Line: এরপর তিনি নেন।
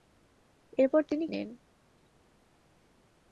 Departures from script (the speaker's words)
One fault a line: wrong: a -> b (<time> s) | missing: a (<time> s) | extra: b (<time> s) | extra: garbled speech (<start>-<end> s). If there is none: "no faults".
no faults